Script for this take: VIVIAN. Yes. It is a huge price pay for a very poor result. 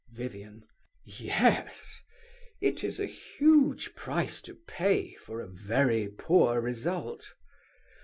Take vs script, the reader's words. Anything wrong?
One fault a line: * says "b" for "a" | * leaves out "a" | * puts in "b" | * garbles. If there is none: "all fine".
* puts in "to"